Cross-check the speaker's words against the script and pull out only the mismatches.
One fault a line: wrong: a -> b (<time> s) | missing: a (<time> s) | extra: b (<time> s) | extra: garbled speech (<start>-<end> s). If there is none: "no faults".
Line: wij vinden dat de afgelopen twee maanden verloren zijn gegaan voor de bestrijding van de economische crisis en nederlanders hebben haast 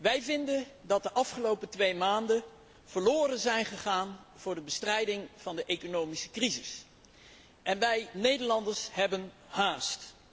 extra: wij (7.8 s)